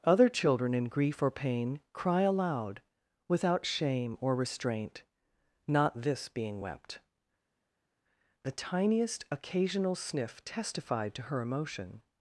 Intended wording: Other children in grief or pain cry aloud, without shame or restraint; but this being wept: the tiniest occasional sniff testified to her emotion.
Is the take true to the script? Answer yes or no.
no